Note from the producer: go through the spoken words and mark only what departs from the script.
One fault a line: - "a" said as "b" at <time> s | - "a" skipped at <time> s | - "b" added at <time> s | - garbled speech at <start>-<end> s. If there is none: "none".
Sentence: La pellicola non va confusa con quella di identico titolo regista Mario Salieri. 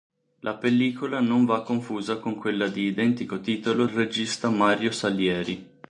none